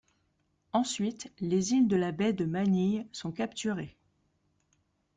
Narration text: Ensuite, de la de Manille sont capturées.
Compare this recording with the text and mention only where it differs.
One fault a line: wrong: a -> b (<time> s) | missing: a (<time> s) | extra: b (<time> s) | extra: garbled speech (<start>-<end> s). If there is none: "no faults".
extra: les îles (1.4 s)
extra: baie (2.1 s)